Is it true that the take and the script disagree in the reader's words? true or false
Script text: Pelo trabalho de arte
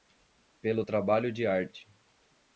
false